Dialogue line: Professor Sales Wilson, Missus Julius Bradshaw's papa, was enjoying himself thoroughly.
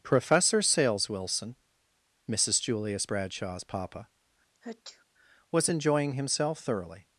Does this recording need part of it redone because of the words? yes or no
no